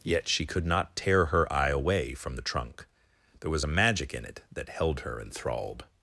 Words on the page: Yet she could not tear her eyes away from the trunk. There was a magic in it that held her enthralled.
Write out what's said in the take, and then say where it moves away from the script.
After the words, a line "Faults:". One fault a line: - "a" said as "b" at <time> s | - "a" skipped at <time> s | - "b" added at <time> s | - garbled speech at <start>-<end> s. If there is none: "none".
Yet she could not tear her eye away from the trunk. There was a magic in it that held her enthralled.
Faults:
- "eyes" said as "eye" at 1.5 s